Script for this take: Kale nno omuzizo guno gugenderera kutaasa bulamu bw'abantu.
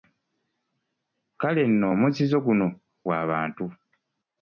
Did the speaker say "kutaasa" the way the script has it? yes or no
no